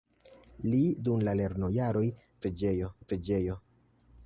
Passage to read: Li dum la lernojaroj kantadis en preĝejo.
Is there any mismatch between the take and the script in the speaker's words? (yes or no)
yes